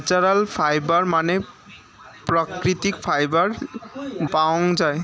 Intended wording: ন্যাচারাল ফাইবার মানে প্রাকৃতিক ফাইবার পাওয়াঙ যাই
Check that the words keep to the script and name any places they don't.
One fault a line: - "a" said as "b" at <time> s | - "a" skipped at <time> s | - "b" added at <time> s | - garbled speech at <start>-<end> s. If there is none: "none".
none